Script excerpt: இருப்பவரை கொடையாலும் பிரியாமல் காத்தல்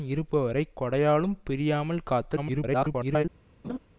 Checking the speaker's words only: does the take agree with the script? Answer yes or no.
no